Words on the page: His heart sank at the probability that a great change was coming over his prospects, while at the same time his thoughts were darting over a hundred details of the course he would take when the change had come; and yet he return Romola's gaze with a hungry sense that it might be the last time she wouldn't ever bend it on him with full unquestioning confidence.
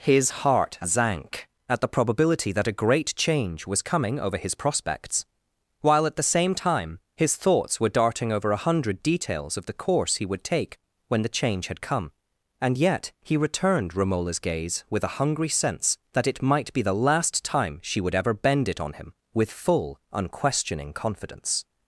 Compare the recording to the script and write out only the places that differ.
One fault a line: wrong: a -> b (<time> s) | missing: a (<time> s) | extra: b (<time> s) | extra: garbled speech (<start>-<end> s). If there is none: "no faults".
wrong: return -> returned (13.4 s)
wrong: wouldn't -> would (18.0 s)